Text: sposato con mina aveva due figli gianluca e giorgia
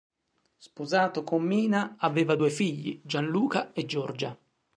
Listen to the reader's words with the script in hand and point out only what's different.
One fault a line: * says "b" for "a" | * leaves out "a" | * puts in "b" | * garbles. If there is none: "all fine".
all fine